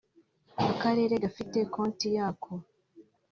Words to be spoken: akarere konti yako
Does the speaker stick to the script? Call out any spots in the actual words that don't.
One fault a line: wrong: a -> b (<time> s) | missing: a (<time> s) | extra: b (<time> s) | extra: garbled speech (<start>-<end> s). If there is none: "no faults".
extra: gafite (1.2 s)